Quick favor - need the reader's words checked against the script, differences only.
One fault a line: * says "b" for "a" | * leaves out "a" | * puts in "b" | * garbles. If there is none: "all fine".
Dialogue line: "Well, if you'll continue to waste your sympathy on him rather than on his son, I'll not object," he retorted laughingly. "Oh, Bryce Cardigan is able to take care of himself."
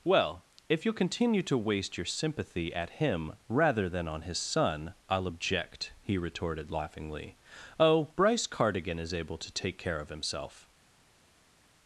* says "at" for "on"
* leaves out "not"